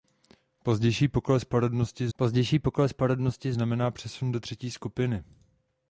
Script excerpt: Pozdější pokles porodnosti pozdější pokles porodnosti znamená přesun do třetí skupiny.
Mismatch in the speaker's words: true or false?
false